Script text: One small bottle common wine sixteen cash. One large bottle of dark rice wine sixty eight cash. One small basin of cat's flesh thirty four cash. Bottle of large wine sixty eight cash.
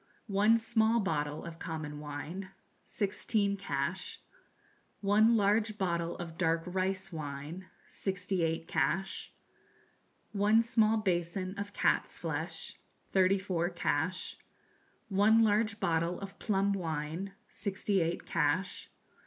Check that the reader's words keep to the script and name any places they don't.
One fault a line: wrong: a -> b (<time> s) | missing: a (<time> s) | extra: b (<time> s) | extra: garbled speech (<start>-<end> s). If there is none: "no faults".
extra: of (1.4 s)
extra: One large (15.1 s)
wrong: large -> plum (16.4 s)